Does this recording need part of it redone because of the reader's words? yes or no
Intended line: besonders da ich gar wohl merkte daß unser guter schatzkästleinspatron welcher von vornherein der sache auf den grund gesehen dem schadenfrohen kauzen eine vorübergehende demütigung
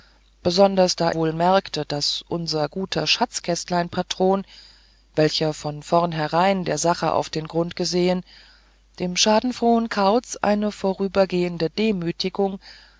yes